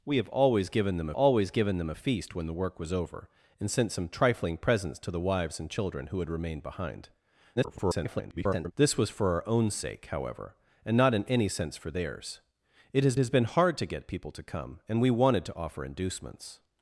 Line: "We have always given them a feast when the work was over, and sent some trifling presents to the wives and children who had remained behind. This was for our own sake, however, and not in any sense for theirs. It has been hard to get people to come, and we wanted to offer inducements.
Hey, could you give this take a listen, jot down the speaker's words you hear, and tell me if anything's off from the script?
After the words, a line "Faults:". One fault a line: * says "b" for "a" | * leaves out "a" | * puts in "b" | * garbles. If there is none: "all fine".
"We have always given them always given them a feast when the work was over, and sent some trifling presents to the wives and children who had remained behind. [garbled] This was for our own sake, however, and not in any sense for theirs. It has has been hard to get people to come, and we wanted to offer inducements.
Faults:
* puts in "always given them"
* garbles
* puts in "has"